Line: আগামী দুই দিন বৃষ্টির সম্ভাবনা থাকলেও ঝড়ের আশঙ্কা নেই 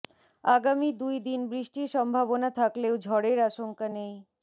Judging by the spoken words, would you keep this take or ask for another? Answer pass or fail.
pass